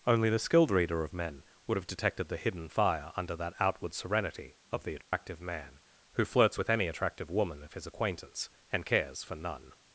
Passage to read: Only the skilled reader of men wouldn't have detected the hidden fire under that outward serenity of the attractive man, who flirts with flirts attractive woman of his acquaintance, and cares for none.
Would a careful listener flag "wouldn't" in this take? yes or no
yes